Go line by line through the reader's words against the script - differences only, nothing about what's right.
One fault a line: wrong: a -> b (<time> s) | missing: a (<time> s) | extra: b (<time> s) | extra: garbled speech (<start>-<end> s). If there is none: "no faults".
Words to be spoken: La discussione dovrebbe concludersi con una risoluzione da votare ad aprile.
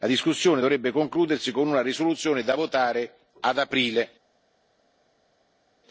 no faults